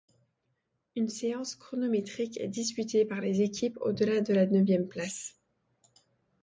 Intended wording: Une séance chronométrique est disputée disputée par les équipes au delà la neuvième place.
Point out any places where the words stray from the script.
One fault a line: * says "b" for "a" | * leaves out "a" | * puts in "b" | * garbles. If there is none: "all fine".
* leaves out "disputée"
* puts in "de"